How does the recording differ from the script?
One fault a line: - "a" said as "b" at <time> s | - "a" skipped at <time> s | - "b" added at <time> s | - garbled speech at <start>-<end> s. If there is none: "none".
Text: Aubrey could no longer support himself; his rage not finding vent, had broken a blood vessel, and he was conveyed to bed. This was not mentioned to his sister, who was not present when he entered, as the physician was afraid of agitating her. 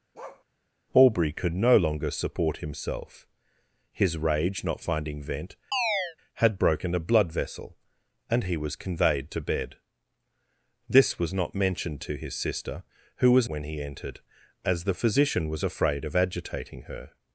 - "not present" skipped at 13.5 s